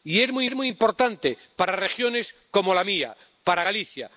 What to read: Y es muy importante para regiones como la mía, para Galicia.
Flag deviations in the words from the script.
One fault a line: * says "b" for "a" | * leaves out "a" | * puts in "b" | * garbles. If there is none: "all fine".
* puts in "es muy"